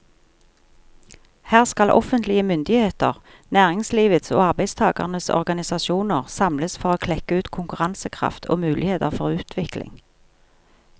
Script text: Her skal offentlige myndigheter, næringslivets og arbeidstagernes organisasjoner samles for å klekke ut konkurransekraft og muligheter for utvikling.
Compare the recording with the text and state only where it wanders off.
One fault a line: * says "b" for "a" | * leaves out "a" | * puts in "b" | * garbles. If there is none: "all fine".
all fine